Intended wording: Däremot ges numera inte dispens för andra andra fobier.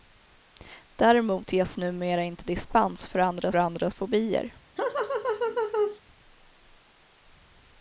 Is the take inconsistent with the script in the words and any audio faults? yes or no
yes